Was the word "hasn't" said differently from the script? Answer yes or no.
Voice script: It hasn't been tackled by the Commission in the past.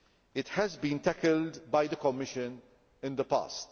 yes